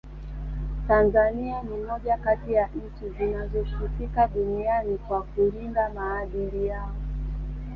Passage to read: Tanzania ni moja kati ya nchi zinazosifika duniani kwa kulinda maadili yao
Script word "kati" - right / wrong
right